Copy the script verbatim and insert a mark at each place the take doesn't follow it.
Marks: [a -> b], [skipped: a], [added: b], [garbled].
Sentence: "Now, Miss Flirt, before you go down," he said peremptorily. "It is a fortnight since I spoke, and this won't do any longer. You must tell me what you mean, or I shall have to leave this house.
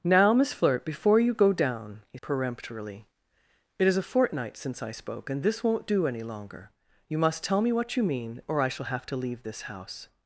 "Now, Miss Flirt, before you go down," he [skipped: said] peremptorily. "It is a fortnight since I spoke, and this won't do any longer. You must tell me what you mean, or I shall have to leave this house.